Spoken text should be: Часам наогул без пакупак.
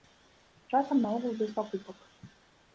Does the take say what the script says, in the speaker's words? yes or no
yes